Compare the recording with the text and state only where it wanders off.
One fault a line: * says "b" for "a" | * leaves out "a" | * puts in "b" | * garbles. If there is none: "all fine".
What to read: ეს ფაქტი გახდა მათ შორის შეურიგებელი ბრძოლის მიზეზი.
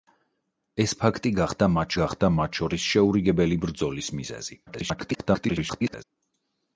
* puts in "გახდა მათ"
* garbles